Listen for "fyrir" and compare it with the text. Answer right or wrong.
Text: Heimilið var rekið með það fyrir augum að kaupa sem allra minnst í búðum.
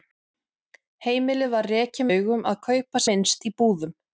wrong